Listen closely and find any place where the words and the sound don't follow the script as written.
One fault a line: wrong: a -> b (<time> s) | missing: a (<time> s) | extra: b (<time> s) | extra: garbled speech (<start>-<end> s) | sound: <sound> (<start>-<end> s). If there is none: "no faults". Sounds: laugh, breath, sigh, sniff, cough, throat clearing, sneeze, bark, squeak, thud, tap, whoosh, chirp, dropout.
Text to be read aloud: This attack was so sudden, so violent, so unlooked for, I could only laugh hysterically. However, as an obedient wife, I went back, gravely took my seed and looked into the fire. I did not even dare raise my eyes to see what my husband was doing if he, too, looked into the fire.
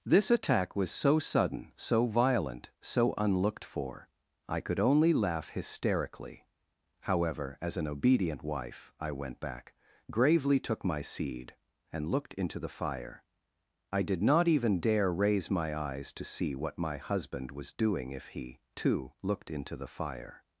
no faults